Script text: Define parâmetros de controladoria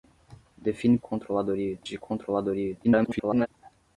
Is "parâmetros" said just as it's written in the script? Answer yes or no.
no